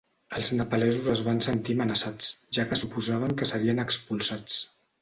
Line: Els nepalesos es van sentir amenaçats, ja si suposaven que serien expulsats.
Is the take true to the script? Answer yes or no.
no